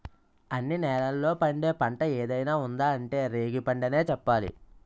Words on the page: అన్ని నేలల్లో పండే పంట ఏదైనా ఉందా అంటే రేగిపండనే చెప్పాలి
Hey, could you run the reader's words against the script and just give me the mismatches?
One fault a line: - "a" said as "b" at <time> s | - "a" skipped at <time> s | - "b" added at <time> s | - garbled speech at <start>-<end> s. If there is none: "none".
none